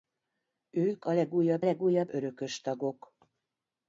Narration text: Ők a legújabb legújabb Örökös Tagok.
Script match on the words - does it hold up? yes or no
yes